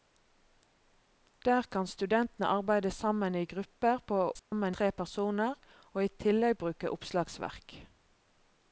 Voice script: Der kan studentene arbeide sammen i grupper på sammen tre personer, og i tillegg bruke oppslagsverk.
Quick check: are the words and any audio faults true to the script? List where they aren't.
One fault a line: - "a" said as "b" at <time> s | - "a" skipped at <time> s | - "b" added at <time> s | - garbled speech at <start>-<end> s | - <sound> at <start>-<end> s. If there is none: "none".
- dropout at 4.4-4.5 s